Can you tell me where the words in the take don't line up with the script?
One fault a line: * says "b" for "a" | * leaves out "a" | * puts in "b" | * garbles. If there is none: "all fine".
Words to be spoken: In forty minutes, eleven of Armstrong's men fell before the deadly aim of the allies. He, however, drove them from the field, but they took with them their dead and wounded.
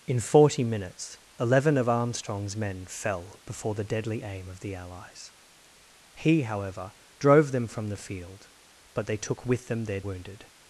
* leaves out "dead and"